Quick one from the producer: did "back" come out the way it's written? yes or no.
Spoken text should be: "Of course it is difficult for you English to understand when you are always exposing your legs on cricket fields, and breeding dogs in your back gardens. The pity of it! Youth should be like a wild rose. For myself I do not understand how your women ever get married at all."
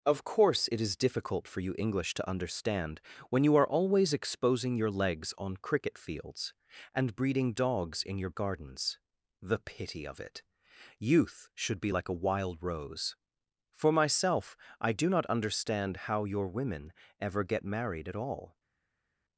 no